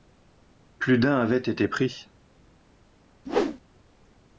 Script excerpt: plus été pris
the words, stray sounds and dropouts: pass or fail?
fail